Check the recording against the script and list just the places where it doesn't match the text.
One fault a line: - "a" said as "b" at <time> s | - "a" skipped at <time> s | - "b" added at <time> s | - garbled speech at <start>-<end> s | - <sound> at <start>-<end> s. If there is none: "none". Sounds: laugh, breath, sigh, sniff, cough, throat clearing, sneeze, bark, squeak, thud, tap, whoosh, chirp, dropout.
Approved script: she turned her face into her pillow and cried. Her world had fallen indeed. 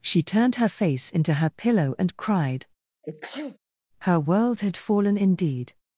- sneeze at 3.0-3.6 s